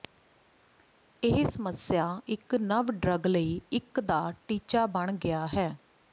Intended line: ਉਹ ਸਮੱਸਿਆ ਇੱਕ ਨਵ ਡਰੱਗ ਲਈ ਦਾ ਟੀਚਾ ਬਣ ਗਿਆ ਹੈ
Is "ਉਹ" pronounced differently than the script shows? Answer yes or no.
yes